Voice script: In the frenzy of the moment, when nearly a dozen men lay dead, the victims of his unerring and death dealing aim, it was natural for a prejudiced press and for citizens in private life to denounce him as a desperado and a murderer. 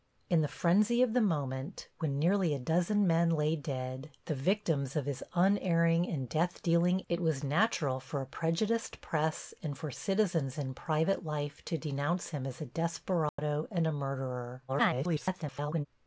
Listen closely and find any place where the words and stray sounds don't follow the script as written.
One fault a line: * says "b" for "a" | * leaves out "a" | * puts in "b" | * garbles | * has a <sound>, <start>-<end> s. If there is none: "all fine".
* leaves out "aim"
* has a dropout, 13.3-13.4 s
* garbles